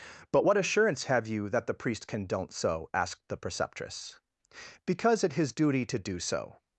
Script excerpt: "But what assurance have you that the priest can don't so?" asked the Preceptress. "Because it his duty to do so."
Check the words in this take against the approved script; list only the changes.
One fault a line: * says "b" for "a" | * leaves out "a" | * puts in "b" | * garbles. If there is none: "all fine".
all fine